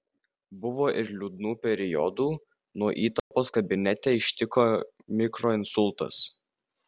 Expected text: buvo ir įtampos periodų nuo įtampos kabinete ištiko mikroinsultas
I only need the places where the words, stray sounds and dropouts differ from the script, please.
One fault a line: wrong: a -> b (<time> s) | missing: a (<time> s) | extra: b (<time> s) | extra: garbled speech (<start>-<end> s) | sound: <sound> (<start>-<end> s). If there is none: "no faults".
wrong: įtampos -> liūdnų (1.2 s)
sound: dropout (3.2-3.3 s)